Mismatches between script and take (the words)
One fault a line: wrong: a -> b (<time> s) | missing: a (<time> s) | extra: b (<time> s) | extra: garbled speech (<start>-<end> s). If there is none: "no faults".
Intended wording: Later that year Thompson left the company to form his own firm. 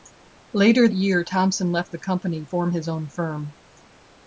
missing: that (0.9 s)
missing: to (2.5 s)